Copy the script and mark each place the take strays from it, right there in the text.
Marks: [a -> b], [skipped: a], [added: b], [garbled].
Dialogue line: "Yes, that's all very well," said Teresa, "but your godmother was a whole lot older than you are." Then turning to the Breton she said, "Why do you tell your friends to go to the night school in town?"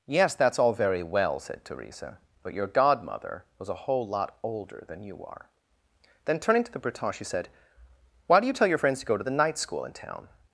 "Yes, that's all very well," said Teresa, "but your godmother was a whole lot older than you are." Then turning to the Breton she said, "Why do you tell your friends to go to the night school in town?"